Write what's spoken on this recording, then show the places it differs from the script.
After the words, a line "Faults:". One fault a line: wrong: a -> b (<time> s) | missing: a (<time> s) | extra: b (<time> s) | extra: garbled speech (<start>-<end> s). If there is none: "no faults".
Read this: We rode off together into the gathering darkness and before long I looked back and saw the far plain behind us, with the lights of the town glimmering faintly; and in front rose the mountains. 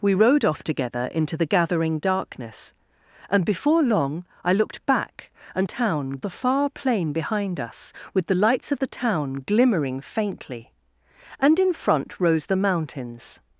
We rode off together into the gathering darkness and before long I looked back and town the far plain behind us, with the lights of the town glimmering faintly; and in front rose the mountains.
Faults:
wrong: saw -> town (5.6 s)